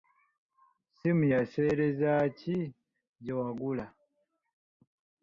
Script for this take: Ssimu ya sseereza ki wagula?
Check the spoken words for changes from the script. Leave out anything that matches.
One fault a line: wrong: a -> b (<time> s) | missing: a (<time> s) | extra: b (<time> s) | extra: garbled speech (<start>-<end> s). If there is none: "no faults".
extra: gye (3.2 s)